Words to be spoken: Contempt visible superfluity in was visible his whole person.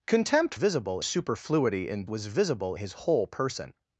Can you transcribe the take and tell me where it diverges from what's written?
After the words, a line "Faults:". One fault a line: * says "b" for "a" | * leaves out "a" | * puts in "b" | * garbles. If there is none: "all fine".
Contempt visible superfluity in was visible his whole person.
Faults:
all fine